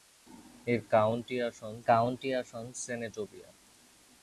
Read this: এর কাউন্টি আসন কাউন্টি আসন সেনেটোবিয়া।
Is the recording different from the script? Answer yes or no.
no